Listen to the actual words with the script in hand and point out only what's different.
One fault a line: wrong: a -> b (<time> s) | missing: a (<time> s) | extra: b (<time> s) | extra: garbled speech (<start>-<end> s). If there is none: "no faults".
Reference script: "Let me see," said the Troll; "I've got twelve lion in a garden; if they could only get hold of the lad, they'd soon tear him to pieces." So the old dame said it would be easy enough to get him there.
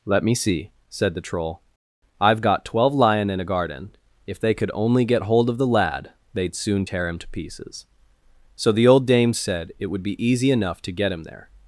no faults